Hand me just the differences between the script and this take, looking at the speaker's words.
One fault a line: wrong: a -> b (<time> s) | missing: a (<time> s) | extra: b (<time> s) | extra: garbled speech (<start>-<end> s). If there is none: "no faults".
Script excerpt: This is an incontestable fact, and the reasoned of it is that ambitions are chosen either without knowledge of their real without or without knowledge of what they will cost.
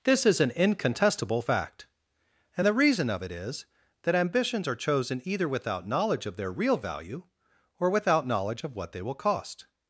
wrong: reasoned -> reason (2.8 s)
wrong: without -> value (6.8 s)